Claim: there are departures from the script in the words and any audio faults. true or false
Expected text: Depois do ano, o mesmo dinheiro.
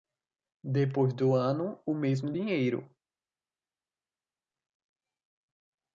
false